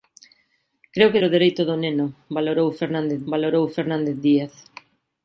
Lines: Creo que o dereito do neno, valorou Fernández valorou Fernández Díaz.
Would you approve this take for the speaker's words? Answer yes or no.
yes